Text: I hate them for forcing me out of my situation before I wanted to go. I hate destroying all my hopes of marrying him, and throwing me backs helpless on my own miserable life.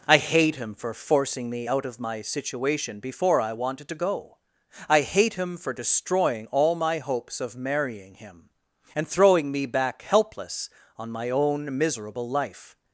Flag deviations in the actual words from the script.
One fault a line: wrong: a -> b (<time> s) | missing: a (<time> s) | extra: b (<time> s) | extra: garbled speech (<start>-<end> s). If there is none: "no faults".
wrong: them -> him (0.6 s)
extra: him for (5.3 s)
wrong: backs -> back (9.7 s)